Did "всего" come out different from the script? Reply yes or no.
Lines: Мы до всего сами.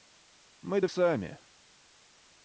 yes